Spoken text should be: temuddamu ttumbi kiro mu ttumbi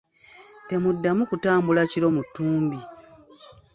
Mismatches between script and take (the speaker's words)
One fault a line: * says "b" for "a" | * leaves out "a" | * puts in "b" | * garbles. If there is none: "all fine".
* says "kutambula" for "ttumbi"